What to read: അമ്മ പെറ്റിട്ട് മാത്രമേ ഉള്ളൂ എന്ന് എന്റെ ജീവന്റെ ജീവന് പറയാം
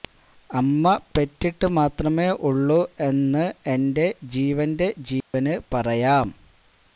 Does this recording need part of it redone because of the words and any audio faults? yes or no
yes